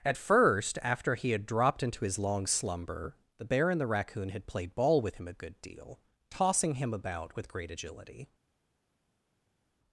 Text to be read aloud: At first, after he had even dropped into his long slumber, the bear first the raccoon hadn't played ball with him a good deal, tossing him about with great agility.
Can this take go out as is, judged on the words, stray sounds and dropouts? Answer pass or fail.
fail